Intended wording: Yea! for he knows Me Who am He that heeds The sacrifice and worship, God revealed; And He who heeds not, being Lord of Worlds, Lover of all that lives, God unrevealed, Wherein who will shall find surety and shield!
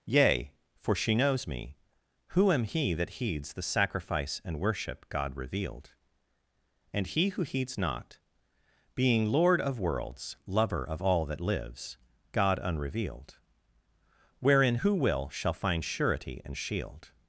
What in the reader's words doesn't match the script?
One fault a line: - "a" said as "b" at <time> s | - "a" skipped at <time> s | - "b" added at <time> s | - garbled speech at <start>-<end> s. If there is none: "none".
- "he" said as "she" at 0.9 s